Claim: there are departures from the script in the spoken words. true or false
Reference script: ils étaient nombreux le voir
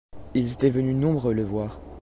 true